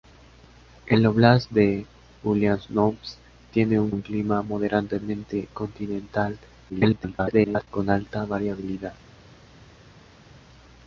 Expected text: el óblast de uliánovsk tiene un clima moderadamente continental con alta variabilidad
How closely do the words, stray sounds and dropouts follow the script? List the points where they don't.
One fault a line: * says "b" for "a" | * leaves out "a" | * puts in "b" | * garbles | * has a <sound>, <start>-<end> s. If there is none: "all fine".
* puts in "un"
* garbles